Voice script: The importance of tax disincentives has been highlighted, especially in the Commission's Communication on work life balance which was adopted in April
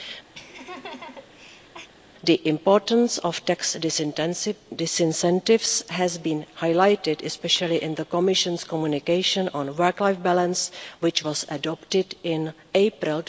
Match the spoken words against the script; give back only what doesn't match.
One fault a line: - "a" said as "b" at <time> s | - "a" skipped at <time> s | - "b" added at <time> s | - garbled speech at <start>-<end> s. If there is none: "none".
none